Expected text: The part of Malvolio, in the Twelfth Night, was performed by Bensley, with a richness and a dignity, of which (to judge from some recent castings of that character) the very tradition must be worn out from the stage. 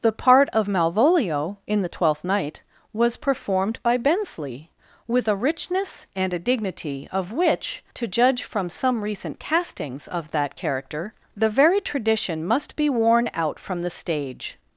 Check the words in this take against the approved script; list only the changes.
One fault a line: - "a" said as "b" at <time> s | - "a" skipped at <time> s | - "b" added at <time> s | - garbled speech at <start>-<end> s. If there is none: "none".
none